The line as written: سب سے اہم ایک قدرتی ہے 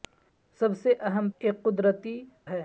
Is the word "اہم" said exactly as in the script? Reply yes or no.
yes